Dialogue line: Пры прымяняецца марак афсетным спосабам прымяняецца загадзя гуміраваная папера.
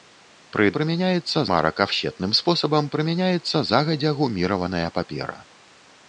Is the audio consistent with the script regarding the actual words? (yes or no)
yes